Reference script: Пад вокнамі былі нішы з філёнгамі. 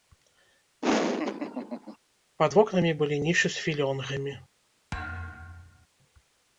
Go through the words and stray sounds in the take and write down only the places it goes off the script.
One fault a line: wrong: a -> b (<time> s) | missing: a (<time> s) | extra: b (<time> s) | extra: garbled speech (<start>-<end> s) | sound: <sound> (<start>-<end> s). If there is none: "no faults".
sound: laugh (0.8-2.0 s)
sound: thud (4.9-5.9 s)